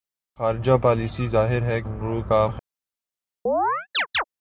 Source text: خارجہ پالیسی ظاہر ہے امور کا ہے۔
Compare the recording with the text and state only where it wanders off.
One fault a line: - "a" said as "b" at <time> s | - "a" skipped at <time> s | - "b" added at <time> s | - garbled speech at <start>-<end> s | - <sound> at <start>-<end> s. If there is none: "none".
- chirp at 3.5-4.2 s